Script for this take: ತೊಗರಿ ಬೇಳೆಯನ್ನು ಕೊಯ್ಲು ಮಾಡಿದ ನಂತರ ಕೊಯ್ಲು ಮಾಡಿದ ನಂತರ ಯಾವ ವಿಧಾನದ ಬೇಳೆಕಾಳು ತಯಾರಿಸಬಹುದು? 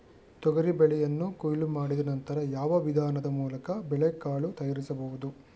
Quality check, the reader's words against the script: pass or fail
fail